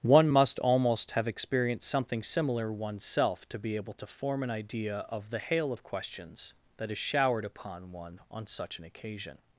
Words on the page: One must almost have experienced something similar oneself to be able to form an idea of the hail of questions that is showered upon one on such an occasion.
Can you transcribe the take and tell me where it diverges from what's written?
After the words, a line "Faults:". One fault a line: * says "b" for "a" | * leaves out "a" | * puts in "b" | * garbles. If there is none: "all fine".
One must almost have experienced something similar oneself to be able to form an idea of the hail of questions that is showered upon one on such an occasion.
Faults:
all fine